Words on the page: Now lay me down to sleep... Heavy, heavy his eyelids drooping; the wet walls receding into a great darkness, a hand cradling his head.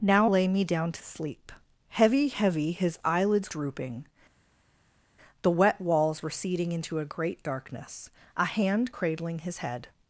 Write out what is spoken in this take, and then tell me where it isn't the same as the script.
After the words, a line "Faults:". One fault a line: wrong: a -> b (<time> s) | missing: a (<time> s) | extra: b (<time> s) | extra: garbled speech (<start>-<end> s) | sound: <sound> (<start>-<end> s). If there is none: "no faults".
Now lay me down to sleep... Heavy, heavy his eyelids drooping; the wet walls receding into a great darkness, a hand cradling his head.
Faults:
no faults